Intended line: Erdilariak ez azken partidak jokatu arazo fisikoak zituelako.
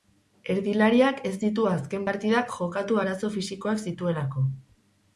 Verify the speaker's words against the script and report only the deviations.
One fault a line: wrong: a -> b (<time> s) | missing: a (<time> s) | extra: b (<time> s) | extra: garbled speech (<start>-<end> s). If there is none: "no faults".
extra: ditu (1.4 s)